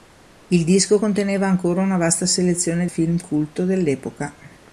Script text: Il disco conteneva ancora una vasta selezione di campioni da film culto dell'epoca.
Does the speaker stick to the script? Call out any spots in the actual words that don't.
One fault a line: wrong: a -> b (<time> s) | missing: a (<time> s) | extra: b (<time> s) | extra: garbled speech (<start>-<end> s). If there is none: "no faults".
missing: di campioni da (2.9 s)